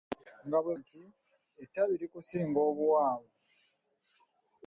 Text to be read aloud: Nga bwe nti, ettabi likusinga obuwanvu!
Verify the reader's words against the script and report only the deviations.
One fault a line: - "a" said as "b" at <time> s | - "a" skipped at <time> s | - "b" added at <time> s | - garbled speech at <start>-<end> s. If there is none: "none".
none